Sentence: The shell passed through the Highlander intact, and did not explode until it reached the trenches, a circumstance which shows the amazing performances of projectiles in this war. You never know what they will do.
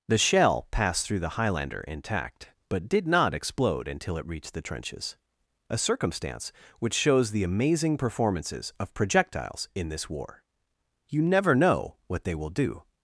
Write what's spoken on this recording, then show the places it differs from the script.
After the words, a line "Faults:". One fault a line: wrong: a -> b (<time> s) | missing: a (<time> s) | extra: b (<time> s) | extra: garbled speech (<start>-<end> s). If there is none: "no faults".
The shell passed through the Highlander intact, but did not explode until it reached the trenches, a circumstance which shows the amazing performances of projectiles in this war. You never know what they will do.
Faults:
wrong: and -> but (2.7 s)